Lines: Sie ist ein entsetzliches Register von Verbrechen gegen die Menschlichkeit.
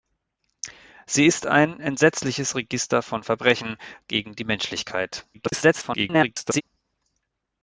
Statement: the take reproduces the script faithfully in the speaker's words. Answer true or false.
false